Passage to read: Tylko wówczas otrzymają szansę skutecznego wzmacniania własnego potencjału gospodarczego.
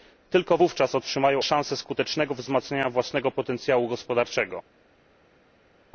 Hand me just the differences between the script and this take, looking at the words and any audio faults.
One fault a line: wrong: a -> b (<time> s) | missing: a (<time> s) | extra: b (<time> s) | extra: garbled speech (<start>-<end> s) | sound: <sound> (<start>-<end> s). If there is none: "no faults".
no faults